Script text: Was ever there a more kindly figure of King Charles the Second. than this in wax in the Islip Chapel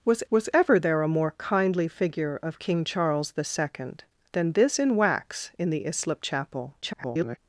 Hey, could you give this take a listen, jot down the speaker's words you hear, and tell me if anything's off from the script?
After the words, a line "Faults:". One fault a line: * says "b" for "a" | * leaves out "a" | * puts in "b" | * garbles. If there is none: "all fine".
Was was ever there a more kindly figure of King Charles the Second. than this in wax in the Islip Chapel [garbled]
Faults:
* puts in "was"
* garbles